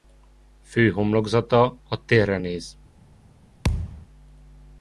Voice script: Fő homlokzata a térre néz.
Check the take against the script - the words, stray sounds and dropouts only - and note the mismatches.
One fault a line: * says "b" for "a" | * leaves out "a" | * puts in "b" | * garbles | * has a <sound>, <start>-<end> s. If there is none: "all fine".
* has a thud, 3.6-4.1 s